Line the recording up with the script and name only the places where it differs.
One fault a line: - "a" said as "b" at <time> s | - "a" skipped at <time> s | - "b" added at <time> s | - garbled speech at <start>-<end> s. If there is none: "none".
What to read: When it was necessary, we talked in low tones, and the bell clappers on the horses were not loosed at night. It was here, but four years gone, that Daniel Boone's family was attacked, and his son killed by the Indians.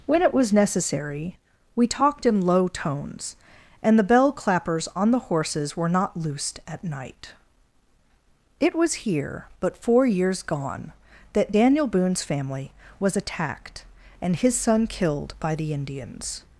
none